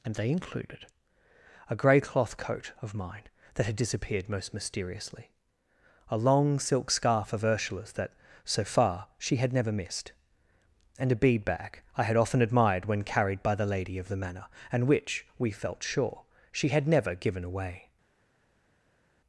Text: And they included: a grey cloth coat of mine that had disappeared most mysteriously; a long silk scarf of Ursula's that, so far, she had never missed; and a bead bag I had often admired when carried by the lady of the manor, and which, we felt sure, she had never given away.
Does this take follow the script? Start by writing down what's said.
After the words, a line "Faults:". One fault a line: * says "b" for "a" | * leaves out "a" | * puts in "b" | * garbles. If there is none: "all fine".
And they included: a grey cloth coat of mine that had disappeared most mysteriously; a long silk scarf of Ursula's that, so far, she had never missed; and a bead bag I had often admired when carried by the lady of the manor, and which, we felt sure, she had never given away.
Faults:
all fine